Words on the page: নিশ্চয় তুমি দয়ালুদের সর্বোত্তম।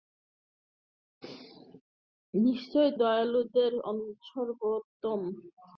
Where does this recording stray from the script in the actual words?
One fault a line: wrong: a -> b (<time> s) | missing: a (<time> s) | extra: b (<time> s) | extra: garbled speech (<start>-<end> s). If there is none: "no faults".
missing: তুমি (2.9 s)